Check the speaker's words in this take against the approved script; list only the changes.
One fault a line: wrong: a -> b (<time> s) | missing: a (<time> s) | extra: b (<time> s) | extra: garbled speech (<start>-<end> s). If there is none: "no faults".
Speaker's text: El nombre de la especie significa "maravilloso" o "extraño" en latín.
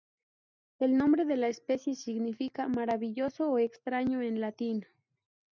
no faults